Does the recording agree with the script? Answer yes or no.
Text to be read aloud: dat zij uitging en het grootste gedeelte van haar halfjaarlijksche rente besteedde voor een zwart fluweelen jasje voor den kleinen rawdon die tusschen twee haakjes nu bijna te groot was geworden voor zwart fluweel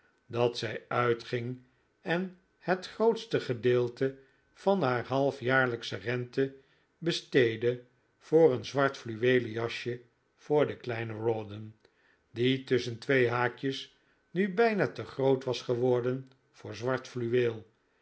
yes